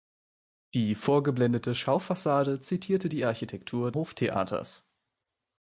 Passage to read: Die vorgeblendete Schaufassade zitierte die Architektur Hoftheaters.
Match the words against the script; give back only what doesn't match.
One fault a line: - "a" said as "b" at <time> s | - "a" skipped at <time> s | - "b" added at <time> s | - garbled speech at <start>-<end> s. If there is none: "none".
none